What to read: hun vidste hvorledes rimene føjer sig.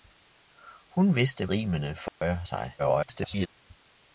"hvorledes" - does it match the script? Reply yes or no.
no